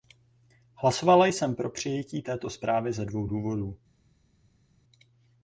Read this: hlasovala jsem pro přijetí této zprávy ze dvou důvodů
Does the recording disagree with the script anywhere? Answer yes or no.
no